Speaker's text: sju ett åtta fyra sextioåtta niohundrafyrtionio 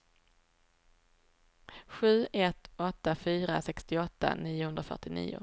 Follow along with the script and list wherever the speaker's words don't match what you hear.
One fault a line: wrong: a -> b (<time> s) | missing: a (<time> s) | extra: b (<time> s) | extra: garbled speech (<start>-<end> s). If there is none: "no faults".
no faults